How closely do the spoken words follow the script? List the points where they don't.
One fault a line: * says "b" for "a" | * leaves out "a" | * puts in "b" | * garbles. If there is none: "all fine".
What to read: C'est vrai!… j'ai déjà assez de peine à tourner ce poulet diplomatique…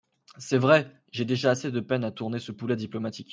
all fine